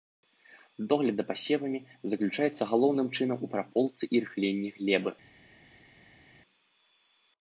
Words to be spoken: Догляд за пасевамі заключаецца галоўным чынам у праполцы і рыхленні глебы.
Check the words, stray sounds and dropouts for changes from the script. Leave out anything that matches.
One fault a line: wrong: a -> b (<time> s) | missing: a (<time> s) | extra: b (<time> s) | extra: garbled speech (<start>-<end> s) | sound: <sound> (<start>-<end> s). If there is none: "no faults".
no faults